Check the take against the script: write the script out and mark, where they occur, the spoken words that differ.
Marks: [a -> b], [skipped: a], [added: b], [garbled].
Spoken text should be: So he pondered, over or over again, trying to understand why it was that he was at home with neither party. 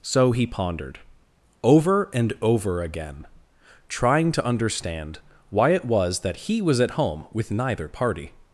So he pondered, over [or -> and] over again, trying to understand why it was that he was at home with neither party.